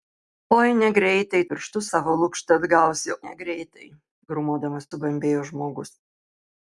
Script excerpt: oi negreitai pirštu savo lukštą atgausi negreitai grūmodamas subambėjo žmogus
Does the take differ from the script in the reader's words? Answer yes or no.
no